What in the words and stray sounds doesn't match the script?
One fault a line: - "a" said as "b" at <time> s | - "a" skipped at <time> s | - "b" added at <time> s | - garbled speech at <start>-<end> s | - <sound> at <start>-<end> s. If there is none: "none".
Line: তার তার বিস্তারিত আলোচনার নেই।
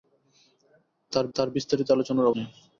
none